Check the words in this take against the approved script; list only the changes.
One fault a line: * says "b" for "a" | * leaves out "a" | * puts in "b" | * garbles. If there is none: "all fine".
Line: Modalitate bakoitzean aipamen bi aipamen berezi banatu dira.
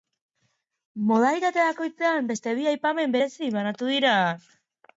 * says "beste" for "aipamen"